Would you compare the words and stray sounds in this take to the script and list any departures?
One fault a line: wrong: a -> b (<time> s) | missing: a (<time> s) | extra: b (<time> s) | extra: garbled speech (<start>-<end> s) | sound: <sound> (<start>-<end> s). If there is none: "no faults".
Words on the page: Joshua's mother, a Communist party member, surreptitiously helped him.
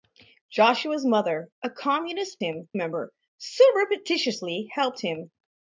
wrong: party -> him (2.4 s)